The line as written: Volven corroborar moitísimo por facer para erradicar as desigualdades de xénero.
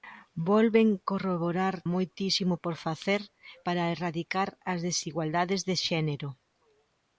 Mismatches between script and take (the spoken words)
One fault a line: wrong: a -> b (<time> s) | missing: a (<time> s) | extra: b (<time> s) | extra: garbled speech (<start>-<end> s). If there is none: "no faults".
no faults